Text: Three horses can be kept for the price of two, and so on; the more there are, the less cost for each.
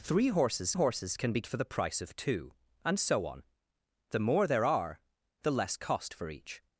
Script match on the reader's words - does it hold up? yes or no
no